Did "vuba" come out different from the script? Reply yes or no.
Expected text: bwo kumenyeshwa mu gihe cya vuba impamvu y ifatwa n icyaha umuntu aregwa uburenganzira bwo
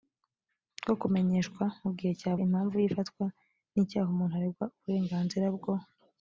yes